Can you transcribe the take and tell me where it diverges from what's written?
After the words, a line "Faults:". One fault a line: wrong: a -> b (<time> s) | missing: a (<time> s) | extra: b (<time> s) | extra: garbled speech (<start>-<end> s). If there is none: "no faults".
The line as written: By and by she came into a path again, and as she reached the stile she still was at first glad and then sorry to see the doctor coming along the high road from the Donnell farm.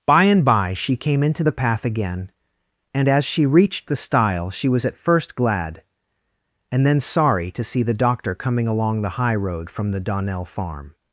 By and by she came into the path again, and as she reached the stile she was at first glad and then sorry to see the doctor coming along the high road from the Donnell farm.
Faults:
wrong: a -> the (1.4 s)
missing: still (4.7 s)